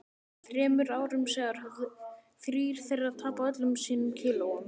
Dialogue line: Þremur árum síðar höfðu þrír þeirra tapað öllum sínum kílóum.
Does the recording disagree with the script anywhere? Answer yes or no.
no